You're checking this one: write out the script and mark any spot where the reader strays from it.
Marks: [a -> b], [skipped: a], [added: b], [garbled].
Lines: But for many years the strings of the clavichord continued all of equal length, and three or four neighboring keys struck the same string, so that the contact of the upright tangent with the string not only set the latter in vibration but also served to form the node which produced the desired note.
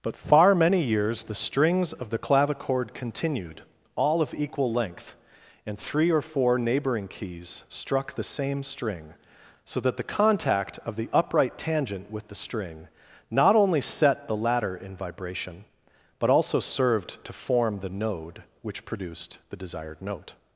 But [for -> far] many years the strings of the clavichord continued all of equal length, and three or four neighboring keys struck the same string, so that the contact of the upright tangent with the string not only set the latter in vibration but also served to form the node which produced the desired note.